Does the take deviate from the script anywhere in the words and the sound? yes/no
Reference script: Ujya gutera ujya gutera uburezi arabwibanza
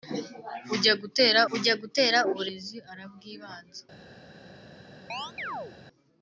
yes